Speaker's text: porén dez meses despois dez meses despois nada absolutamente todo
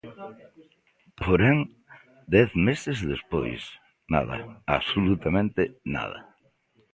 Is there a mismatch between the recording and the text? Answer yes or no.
yes